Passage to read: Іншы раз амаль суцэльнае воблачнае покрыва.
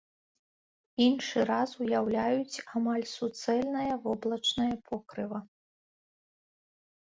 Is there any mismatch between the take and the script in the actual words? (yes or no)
yes